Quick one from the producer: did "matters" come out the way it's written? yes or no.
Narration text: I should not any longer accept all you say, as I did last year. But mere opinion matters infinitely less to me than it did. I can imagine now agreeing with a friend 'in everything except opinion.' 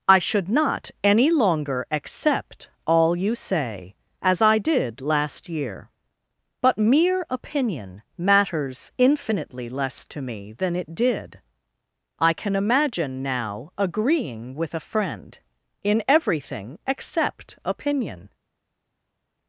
yes